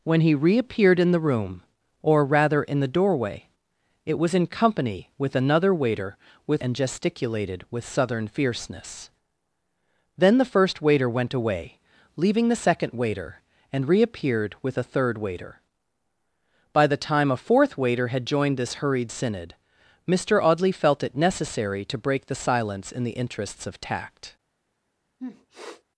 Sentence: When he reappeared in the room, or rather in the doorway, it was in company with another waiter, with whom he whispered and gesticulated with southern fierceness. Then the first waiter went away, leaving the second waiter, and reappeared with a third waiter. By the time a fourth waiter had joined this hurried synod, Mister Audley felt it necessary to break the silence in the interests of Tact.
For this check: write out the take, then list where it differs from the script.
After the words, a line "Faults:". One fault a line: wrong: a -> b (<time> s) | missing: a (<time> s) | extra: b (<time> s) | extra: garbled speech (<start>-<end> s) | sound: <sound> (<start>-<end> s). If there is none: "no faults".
When he reappeared in the room, or rather in the doorway, it was in company with another waiter, with and gesticulated with southern fierceness. Then the first waiter went away, leaving the second waiter, and reappeared with a third waiter. By the time a fourth waiter had joined this hurried synod, Mister Audley felt it necessary to break the silence in the interests of Tact.
Faults:
missing: whom he whispered (6.6 s)
sound: sniff (25.2-25.8 s)